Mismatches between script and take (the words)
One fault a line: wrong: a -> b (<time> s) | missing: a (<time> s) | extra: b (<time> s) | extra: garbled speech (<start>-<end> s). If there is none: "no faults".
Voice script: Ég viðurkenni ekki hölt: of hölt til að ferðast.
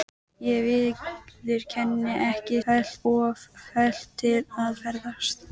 no faults